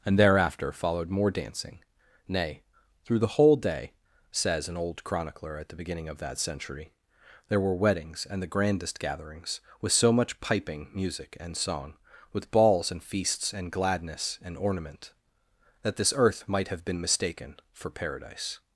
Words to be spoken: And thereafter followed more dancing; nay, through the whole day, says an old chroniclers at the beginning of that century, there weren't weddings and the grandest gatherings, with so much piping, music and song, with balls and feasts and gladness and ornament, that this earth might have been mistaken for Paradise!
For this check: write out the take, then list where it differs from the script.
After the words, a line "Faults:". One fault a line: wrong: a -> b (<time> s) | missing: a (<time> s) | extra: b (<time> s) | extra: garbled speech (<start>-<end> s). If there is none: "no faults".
And thereafter followed more dancing; nay, through the whole day, says an old chronicler at the beginning of that century, there were weddings and the grandest gatherings, with so much piping, music and song, with balls and feasts and gladness and ornament, that this earth might have been mistaken for Paradise!
Faults:
wrong: chroniclers -> chronicler (5.0 s)
wrong: weren't -> were (7.6 s)